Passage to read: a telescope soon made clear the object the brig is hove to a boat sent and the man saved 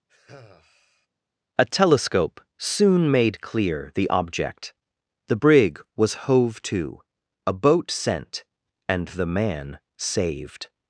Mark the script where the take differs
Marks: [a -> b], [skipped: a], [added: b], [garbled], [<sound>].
[sigh] a telescope soon made clear the object the brig [is -> was] hove to a boat sent and the man saved